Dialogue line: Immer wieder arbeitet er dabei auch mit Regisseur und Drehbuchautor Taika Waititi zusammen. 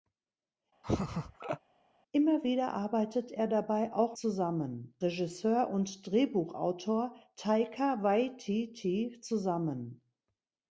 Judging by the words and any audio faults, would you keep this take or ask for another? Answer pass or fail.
fail